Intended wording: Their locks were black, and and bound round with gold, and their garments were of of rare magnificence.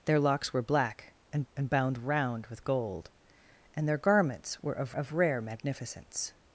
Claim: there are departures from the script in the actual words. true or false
false